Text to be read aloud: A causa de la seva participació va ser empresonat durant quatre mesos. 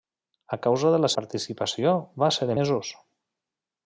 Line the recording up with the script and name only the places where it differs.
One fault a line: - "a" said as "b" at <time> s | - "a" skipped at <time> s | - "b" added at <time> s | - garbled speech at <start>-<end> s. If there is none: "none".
- "seva" skipped at 1.1 s
- "empresonat durant quatre" skipped at 2.5 s